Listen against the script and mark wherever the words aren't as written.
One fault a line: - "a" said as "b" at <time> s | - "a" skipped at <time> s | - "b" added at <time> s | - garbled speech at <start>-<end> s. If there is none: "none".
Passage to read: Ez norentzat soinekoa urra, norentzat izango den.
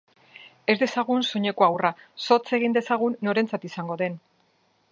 - "norentzat" said as "dezagun" at 0.8 s
- "zotz egin dezagun" added at 2.3 s